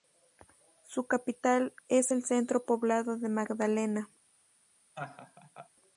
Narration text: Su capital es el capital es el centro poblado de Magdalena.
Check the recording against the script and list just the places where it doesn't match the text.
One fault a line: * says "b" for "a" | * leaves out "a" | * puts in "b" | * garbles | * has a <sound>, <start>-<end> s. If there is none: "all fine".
* leaves out "capital es el"
* has a laugh, 4.9-5.7 s